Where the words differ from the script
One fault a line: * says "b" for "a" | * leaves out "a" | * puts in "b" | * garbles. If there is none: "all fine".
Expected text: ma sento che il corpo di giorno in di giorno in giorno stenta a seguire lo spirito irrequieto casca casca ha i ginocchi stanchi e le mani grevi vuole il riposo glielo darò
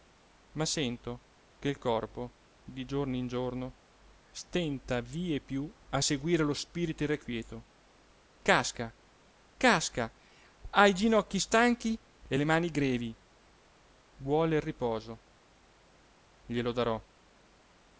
* leaves out "di"
* says "stenta vie più" for "in giorno stenta"